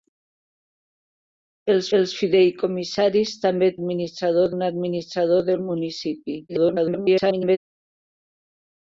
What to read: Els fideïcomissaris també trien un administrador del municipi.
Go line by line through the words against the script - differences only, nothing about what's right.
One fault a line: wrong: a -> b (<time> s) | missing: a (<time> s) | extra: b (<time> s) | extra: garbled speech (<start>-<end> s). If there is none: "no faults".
extra: els (2.0 s)
wrong: trien -> administrador (3.8 s)
extra: garbled speech (6.5-7.6 s)